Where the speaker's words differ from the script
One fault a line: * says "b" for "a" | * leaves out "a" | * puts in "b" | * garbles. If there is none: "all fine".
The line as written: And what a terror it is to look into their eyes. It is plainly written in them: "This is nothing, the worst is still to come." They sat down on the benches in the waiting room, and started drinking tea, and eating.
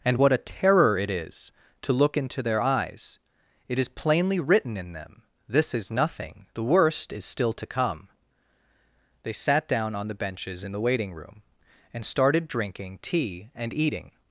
all fine